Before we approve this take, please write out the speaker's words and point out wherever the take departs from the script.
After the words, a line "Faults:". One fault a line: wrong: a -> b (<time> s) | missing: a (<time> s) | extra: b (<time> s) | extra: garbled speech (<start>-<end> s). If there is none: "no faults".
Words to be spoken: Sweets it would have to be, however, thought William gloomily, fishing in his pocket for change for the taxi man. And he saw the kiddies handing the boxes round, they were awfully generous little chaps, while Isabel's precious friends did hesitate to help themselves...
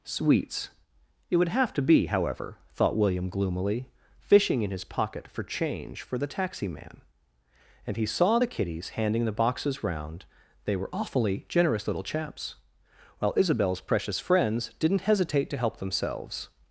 Sweets it would have to be, however, thought William gloomily, fishing in his pocket for change for the taxi man. And he saw the kiddies handing the boxes round, they were awfully generous little chaps, while Isabel's precious friends didn't hesitate to help themselves...
Faults:
wrong: did -> didn't (14.8 s)